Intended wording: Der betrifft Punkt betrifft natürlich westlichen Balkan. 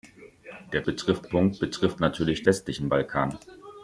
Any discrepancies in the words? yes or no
no